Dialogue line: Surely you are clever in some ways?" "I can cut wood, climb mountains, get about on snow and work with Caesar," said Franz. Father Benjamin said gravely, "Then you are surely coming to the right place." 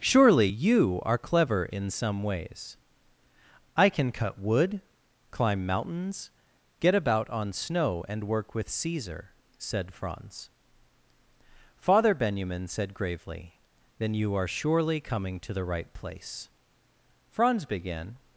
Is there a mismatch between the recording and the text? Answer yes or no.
yes